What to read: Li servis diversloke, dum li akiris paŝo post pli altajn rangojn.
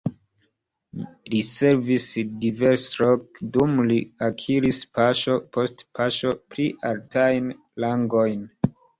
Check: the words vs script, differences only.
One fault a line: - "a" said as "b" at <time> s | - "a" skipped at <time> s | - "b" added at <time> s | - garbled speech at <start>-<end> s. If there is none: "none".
- "paŝo" added at 6.0 s